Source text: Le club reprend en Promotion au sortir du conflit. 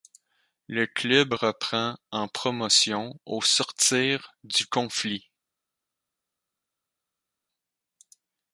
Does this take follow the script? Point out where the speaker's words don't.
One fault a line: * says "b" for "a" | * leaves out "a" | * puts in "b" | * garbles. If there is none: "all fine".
all fine